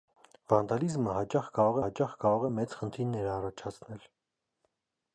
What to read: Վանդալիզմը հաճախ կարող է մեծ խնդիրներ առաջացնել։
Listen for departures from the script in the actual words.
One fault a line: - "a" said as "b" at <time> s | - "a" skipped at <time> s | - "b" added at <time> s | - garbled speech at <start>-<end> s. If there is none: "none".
- "հաճախ կարող" added at 1.8 s